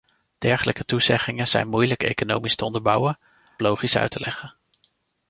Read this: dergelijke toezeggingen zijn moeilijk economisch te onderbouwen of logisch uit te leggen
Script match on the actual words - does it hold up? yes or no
no